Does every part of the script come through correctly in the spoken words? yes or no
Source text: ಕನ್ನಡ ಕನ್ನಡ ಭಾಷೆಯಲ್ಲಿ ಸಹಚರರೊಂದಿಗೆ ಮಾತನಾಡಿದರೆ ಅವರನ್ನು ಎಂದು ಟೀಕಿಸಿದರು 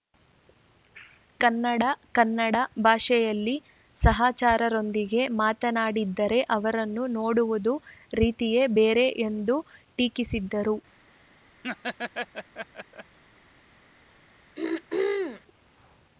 no